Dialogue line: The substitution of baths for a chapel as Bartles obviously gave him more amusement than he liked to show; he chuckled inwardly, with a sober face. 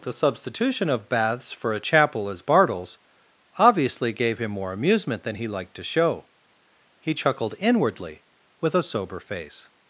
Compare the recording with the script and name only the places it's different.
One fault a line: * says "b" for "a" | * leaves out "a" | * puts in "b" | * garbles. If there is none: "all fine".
all fine